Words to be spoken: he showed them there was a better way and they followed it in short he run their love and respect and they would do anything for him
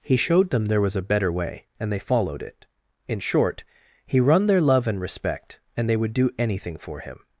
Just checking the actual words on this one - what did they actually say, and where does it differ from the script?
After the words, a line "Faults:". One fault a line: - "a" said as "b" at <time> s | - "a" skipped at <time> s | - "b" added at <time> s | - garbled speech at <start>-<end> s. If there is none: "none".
he showed them there was a better way and they followed it in short he run their love and respect and they would do anything for him
Faults:
none